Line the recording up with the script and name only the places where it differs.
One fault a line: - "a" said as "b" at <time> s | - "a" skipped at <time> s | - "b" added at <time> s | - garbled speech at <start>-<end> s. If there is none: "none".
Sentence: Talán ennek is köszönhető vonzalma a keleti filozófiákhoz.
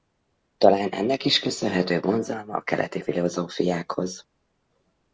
none